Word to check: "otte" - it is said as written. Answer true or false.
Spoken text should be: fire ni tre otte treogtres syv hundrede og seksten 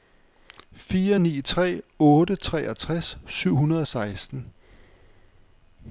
true